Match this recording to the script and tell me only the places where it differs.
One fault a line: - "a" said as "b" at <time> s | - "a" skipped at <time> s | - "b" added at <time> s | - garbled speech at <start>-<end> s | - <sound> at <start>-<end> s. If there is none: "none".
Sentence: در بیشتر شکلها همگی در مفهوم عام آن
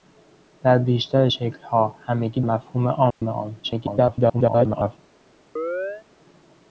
- "در" skipped at 2.4 s
- dropout at 3.1-3.2 s
- garbled speech at 3.6-5.0 s
- chirp at 5.6-6.1 s